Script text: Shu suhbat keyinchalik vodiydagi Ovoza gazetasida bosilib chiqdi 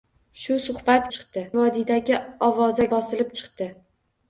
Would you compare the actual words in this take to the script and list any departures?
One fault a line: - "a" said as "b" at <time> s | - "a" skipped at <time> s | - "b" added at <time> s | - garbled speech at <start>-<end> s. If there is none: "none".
- "keyinchalik" said as "chiqdi" at 1.2 s
- "gazetasida" skipped at 2.9 s